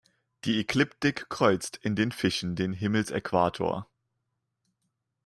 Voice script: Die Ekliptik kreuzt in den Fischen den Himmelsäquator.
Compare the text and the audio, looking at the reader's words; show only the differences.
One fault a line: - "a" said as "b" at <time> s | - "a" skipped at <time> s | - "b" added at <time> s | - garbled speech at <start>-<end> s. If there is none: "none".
none